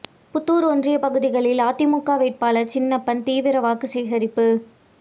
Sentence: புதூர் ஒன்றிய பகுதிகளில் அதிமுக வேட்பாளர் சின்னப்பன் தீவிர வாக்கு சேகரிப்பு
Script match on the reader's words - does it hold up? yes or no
yes